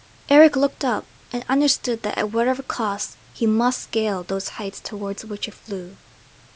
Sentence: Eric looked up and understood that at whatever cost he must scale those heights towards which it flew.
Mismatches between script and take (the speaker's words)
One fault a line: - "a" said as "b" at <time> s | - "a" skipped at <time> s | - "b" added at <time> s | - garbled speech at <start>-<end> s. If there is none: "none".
none